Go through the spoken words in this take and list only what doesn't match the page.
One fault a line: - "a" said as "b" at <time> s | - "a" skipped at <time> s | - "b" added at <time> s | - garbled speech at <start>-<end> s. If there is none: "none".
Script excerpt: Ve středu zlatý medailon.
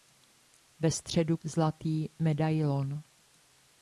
none